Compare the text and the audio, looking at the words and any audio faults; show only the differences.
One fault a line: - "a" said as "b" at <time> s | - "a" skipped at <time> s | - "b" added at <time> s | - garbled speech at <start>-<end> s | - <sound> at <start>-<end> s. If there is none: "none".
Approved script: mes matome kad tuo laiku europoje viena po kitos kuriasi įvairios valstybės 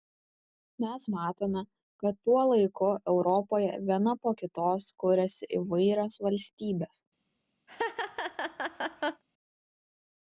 - laugh at 7.7-9.2 s